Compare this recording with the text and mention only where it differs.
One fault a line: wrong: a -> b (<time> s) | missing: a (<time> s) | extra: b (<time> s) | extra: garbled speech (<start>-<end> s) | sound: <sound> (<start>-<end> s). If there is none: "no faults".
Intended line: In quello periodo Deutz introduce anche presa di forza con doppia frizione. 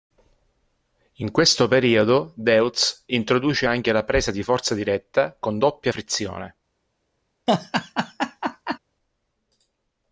wrong: quello -> questo (1.3 s)
extra: la (3.9 s)
extra: diretta (4.7 s)
sound: laugh (7.5-8.8 s)